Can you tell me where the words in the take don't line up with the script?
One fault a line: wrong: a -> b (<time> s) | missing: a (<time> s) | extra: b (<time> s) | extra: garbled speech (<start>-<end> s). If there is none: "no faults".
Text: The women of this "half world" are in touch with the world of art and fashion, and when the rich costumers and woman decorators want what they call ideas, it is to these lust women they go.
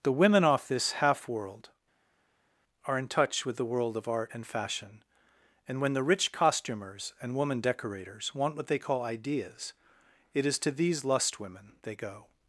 wrong: of -> off (0.4 s)